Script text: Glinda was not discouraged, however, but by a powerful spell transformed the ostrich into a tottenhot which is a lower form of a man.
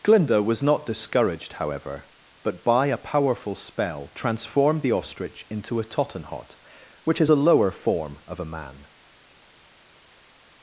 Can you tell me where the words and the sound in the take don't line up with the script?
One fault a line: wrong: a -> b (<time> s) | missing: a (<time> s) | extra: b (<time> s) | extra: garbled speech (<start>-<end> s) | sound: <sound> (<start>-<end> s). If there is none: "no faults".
no faults